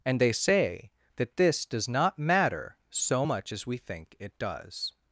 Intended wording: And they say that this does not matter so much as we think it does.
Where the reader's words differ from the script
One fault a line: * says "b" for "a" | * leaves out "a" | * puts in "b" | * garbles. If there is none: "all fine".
all fine